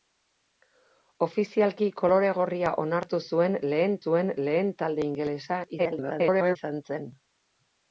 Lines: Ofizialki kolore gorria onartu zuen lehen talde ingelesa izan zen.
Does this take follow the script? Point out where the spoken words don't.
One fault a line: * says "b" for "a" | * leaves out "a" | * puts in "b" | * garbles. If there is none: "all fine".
* puts in "zuen lehen"
* garbles